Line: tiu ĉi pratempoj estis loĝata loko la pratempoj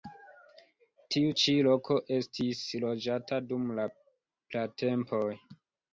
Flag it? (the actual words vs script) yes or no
yes